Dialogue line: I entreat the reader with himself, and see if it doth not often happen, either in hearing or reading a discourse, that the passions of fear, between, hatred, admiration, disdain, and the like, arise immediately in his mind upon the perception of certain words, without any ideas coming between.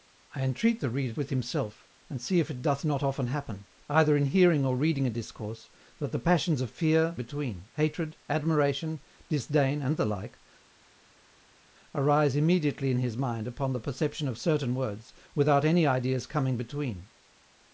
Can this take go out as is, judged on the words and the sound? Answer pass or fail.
pass